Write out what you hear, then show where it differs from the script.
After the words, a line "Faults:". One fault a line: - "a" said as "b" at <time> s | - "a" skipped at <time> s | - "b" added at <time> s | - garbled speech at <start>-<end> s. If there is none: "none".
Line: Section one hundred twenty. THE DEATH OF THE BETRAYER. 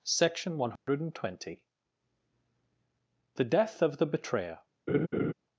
Section one hundred twenty. THE DEATH OF THE BETRAYER.
Faults:
none